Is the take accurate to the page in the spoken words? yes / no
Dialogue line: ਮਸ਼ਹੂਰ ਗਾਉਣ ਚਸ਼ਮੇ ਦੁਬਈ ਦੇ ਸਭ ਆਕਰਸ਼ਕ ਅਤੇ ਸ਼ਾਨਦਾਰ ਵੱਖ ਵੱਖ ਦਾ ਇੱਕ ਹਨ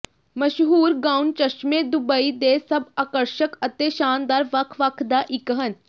yes